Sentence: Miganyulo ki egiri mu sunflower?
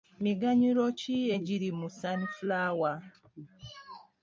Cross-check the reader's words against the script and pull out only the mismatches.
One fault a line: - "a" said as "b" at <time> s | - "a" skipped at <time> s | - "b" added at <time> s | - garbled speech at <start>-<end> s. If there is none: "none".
none